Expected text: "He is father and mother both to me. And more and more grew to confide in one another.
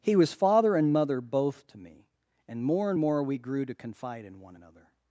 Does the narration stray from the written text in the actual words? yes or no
yes